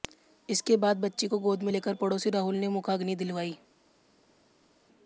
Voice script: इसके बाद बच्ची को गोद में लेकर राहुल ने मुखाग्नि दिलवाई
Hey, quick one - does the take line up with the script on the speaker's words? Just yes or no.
no